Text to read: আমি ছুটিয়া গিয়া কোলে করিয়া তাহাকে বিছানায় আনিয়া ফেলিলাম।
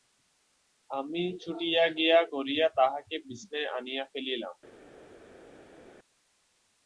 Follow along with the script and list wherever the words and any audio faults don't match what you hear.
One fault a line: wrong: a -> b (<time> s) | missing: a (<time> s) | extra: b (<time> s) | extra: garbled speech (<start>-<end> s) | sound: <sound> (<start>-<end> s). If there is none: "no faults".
missing: কোলে (2.2 s)